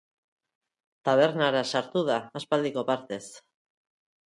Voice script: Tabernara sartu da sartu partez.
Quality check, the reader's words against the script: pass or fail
fail